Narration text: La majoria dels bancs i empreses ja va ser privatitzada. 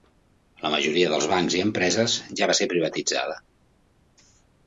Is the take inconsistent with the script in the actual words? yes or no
no